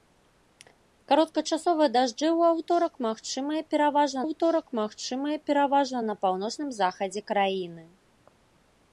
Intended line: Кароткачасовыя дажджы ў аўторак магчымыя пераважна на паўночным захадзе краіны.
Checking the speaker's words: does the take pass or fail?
fail